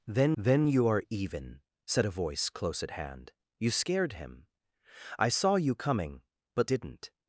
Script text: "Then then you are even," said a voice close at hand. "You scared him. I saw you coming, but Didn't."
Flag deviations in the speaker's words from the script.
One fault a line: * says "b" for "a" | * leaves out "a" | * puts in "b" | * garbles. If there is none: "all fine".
all fine